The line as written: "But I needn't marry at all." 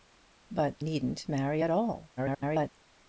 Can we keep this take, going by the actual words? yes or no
no